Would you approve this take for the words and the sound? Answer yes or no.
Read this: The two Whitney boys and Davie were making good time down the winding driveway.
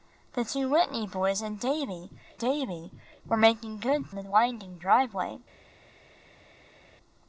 no